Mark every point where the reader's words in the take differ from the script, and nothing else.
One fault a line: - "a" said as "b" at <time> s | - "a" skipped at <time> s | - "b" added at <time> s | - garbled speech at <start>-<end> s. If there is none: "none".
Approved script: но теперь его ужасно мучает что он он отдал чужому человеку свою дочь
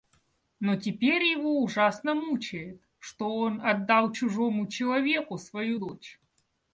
- "он" skipped at 3.6 s